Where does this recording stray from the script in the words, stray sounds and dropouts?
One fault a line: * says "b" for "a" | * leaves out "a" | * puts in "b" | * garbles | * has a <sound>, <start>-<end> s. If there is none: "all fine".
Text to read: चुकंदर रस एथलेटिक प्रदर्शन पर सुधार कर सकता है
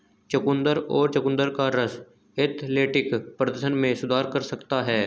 * puts in "और चुकंदर का"
* says "में" for "पर"